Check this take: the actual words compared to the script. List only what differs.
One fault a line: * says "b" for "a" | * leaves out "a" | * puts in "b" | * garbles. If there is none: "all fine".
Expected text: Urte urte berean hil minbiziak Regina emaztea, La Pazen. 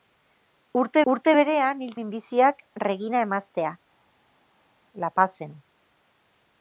all fine